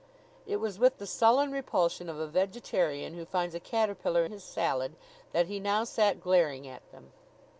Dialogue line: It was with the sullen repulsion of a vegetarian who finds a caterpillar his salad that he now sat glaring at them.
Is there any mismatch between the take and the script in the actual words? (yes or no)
no